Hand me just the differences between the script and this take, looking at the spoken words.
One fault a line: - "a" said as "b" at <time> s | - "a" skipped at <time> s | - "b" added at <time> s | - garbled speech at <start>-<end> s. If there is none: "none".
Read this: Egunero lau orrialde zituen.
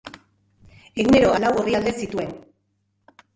none